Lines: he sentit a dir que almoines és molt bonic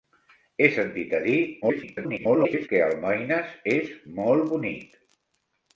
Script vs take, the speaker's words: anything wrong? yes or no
yes